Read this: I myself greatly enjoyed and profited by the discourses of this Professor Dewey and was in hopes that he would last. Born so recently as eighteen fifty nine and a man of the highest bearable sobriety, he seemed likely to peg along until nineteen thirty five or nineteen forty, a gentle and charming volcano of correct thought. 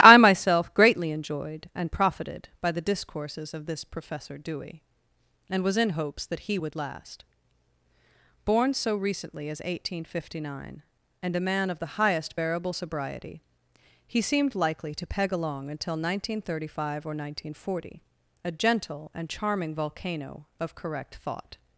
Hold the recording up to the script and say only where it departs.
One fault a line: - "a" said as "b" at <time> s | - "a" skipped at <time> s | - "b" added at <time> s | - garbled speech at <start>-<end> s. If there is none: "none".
none